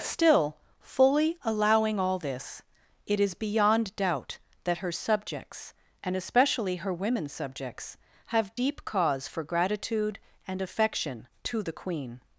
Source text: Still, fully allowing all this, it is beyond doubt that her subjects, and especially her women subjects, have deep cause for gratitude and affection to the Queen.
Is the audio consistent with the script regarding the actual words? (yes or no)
yes